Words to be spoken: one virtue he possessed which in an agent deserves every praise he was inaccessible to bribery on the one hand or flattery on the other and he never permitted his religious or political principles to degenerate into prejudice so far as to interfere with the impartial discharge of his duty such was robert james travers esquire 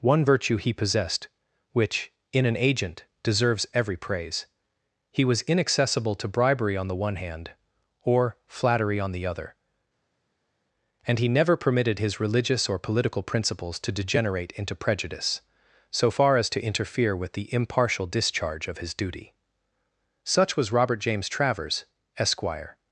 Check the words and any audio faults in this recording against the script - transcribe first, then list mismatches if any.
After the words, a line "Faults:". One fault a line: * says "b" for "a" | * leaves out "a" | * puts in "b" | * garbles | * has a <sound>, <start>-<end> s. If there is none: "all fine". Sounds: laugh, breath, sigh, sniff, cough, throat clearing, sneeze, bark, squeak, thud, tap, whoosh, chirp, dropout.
one virtue he possessed which in an agent deserves every praise he was inaccessible to bribery on the one hand or flattery on the other and he never permitted his religious or political principles to degenerate into prejudice so far as to interfere with the impartial discharge of his duty such was robert james travers esquire
Faults:
all fine